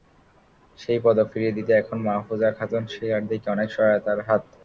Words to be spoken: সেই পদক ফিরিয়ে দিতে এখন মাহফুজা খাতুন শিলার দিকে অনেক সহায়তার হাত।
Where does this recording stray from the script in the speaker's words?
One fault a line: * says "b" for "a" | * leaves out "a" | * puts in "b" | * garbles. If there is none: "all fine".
all fine